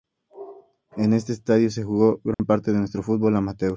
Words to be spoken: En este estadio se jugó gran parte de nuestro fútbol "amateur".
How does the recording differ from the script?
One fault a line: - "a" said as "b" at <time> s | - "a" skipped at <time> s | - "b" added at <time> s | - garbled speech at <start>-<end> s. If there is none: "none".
none